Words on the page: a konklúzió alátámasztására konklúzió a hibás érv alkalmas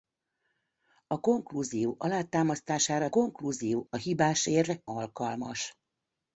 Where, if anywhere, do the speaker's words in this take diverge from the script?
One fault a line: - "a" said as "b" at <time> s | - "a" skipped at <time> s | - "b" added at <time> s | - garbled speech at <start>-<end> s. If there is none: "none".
none